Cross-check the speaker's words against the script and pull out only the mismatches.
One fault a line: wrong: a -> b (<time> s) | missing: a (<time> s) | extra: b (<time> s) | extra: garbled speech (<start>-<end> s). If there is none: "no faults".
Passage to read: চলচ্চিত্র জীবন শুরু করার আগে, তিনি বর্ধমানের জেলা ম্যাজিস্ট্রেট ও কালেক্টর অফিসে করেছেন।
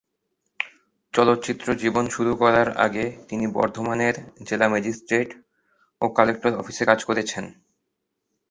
extra: কাজ (6.8 s)